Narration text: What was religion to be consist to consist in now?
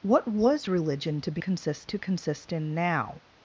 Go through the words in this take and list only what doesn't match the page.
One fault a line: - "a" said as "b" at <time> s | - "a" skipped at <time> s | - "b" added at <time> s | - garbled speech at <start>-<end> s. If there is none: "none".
none